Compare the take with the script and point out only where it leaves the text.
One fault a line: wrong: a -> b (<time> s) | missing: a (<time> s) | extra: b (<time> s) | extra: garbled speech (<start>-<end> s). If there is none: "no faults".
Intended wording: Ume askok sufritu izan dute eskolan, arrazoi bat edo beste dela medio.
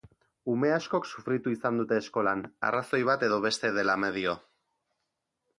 no faults